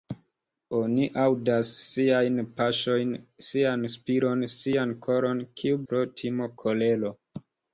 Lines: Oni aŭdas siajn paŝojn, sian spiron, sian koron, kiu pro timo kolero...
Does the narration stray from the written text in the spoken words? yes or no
no